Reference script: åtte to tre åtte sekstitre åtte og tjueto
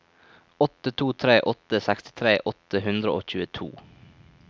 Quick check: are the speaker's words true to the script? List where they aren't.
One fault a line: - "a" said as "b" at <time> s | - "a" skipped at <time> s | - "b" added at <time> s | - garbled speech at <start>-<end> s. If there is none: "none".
- "hundre" added at 2.9 s